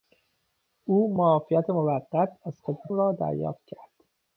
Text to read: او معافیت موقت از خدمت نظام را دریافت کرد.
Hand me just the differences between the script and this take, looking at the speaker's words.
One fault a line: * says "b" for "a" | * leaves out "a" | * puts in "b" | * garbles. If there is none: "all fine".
* leaves out "نظام"